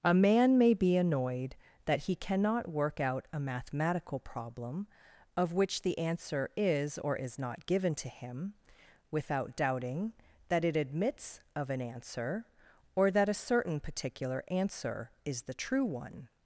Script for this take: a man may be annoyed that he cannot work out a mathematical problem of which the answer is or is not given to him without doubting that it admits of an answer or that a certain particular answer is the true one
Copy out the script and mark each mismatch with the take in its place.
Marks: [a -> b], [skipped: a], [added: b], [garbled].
a man may be annoyed that he cannot work out a mathematical problem of which the answer is or is not given to him without doubting that it admits of an answer or that a certain particular answer is the true one